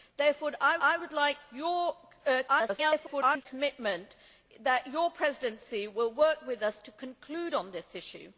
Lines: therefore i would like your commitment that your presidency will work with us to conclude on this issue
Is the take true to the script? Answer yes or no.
no